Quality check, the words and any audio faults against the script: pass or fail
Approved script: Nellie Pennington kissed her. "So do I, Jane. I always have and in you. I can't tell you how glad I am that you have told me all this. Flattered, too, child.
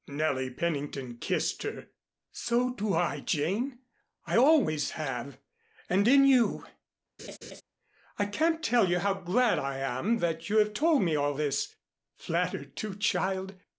fail